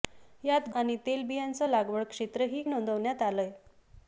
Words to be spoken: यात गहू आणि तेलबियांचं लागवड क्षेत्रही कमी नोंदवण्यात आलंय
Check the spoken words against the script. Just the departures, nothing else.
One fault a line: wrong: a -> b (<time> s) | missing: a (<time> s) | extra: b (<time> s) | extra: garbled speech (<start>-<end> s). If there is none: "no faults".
missing: गहू (0.7 s)
missing: कमी (2.6 s)